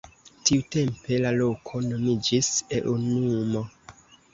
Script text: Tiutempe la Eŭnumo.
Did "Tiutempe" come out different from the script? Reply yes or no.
no